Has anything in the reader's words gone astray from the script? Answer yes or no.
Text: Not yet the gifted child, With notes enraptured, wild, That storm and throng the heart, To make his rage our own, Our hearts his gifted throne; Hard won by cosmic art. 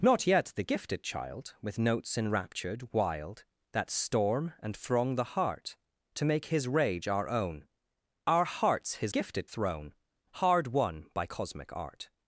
no